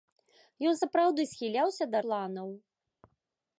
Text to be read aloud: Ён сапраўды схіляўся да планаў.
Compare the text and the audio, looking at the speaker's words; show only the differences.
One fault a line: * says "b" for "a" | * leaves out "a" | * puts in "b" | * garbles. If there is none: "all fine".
all fine